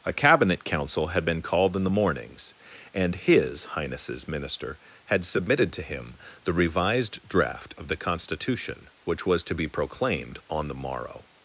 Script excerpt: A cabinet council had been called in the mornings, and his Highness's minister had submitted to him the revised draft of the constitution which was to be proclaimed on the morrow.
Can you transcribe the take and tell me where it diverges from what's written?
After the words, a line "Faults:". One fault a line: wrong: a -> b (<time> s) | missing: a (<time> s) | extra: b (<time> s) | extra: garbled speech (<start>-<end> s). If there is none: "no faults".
A cabinet council had been called in the mornings, and his Highness's minister had submitted to him the revised draft of the constitution which was to be proclaimed on the morrow.
Faults:
no faults